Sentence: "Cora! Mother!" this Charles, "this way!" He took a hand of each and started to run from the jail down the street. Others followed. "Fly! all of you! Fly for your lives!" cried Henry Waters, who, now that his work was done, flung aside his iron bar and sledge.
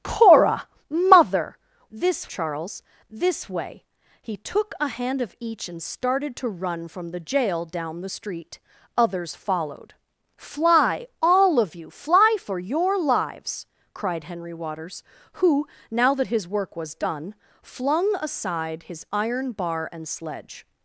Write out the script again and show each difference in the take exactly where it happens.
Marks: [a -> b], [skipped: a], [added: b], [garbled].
"Cora! Mother!" this Charles, "this way!" He took a hand of each and started to run from the jail down the street. Others followed. "Fly! all of you! Fly for your lives!" cried Henry Waters, who, now that his work was done, flung aside his iron bar and sledge.